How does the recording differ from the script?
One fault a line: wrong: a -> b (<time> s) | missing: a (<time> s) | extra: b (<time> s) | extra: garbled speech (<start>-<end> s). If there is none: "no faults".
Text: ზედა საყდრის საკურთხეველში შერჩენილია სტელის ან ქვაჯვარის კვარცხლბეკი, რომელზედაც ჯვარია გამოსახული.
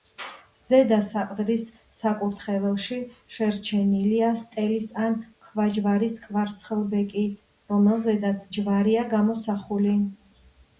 no faults